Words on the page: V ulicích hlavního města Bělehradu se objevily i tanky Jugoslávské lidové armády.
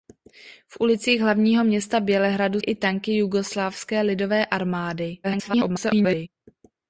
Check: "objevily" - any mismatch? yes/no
yes